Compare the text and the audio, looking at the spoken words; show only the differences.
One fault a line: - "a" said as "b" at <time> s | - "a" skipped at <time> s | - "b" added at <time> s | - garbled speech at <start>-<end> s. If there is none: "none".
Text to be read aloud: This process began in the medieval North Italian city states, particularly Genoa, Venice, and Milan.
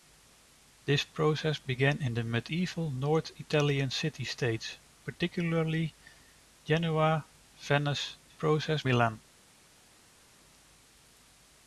- "and" said as "process" at 8.3 s